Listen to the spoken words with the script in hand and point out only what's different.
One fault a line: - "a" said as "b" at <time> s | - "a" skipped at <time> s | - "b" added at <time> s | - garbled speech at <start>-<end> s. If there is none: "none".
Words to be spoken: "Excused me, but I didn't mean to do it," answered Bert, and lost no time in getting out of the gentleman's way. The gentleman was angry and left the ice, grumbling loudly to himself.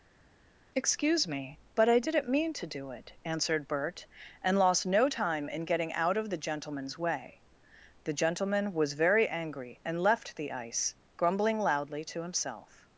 - "Excused" said as "Excuse" at 0.8 s
- "very" added at 8.9 s